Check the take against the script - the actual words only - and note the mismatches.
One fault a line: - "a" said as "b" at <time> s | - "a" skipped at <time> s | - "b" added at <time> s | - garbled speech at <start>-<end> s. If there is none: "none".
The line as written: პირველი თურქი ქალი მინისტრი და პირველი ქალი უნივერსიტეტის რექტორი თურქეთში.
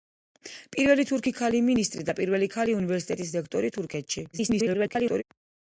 - garbled speech at 4.3-5.2 s